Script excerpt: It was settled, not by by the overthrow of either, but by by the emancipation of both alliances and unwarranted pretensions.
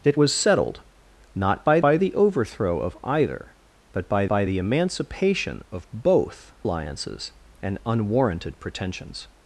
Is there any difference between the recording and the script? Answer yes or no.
no